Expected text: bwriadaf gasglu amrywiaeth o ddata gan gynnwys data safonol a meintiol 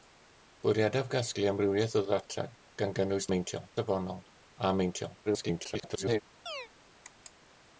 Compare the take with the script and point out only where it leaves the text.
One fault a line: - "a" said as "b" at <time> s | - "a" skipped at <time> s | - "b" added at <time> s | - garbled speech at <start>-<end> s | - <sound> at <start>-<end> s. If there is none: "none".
- "data" said as "meintiol" at 3.3 s
- garbled speech at 5.3-6.2 s
- chirp at 6.5-6.7 s